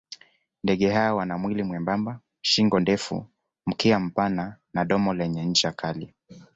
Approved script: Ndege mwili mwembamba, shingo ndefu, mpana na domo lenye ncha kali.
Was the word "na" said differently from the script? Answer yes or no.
no